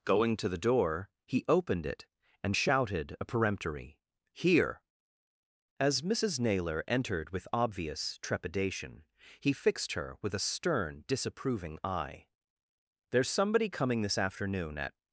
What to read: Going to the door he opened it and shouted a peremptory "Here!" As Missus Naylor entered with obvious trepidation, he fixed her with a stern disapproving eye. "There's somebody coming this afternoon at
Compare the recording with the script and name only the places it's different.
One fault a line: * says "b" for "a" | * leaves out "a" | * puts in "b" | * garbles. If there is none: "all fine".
all fine